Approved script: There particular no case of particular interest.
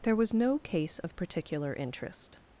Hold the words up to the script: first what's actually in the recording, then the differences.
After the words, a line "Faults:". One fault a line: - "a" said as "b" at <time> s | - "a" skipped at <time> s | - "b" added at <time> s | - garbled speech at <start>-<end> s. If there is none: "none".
There was no case of particular interest.
Faults:
- "particular" said as "was" at 0.1 s